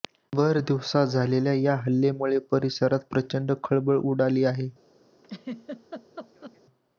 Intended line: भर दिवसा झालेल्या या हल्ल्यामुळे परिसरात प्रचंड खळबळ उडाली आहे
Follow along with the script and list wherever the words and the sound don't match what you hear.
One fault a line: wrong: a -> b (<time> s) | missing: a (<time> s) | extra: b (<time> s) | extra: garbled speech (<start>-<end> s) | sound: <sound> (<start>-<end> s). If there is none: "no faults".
sound: laugh (5.2-6.6 s)